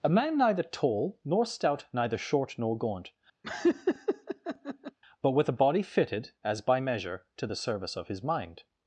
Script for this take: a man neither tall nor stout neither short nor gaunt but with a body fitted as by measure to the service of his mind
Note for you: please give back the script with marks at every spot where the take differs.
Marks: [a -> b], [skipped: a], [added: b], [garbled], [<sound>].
a man neither tall nor stout neither short nor gaunt [laugh] but with a body fitted as by measure to the service of his mind